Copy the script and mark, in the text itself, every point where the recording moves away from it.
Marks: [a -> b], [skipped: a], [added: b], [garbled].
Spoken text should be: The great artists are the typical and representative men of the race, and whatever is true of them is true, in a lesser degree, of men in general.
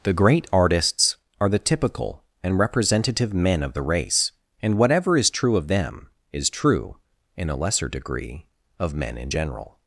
The great artists are the typical and representative men of the race, and whatever is true of them is true, in a lesser degree, of men in general.